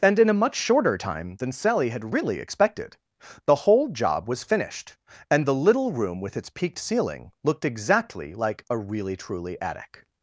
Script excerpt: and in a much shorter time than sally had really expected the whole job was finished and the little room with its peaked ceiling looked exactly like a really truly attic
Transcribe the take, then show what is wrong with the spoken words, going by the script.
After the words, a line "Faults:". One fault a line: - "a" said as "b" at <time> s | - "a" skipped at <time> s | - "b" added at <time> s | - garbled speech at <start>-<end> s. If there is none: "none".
and in a much shorter time than sally had really expected the whole job was finished and the little room with its peaked ceiling looked exactly like a really truly attic
Faults:
none